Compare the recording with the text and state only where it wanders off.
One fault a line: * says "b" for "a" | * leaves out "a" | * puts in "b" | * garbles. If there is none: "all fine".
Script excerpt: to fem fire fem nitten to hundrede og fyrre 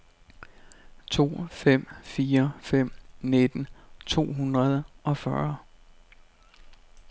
all fine